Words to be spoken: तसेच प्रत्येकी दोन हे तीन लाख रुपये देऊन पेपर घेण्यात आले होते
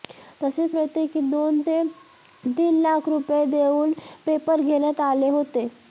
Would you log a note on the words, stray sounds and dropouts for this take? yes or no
yes